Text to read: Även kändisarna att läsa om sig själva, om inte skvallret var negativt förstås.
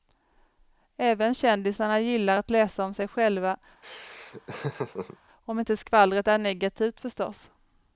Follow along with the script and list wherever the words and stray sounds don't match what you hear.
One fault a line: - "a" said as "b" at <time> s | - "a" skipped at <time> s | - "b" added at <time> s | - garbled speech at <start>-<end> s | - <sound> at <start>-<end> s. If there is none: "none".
- "gillar" added at 2.0 s
- laugh at 3.8-5.2 s
- "var" said as "är" at 6.3 s